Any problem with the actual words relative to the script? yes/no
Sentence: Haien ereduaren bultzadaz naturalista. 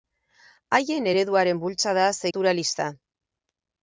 no